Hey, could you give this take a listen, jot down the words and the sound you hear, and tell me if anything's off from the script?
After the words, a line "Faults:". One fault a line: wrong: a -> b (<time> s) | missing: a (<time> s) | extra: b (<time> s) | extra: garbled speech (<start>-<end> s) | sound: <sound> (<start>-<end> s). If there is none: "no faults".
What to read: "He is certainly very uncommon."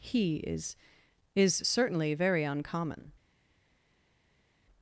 "He is is certainly very uncommon."
Faults:
extra: is (1.4 s)